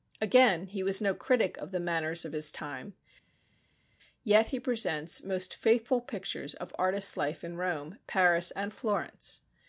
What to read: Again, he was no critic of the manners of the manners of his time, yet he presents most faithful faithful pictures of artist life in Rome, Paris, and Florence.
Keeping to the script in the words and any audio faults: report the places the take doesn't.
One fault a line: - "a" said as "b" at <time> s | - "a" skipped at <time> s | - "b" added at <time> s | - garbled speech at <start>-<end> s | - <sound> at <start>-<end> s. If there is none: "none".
- "the manners of" skipped at 2.3 s
- "faithful" skipped at 6.0 s